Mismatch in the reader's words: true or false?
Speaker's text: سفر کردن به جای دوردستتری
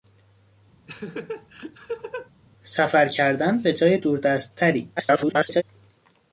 true